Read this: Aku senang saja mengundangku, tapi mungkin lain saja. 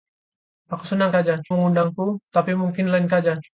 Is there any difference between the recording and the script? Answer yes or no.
no